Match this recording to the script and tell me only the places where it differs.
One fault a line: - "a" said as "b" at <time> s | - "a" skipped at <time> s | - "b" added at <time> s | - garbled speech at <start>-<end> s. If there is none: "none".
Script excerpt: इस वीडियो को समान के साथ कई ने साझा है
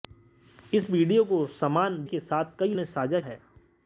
none